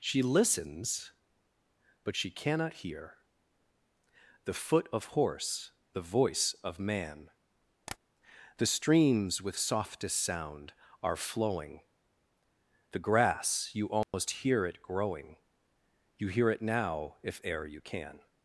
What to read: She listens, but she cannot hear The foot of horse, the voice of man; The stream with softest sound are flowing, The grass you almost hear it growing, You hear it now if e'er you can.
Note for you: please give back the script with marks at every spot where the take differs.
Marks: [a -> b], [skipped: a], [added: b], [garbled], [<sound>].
She listens, but she cannot hear The foot of horse, the voice of man; [tap] The [stream -> streams] with softest sound are flowing, The grass you almost [dropout] hear it growing, You hear it now if e'er you can.